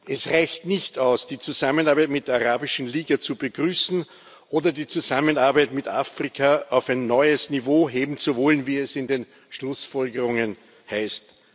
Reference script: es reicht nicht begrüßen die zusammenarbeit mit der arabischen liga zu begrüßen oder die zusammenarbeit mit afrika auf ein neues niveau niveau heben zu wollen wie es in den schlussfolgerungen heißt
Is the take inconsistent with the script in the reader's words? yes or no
yes